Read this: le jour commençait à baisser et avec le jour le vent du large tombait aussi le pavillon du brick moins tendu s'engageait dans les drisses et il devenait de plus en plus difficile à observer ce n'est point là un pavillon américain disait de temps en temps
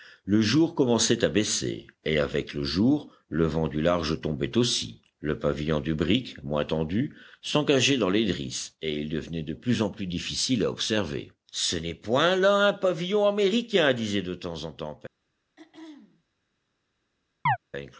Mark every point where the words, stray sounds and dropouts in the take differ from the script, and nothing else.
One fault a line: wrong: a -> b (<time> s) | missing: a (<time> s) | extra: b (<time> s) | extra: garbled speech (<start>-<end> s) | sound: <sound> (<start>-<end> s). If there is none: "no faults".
sound: throat clearing (15.6-16.2 s)
sound: chirp (17.5-17.6 s)